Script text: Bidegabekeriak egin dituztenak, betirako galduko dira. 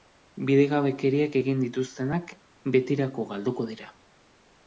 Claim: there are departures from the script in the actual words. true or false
false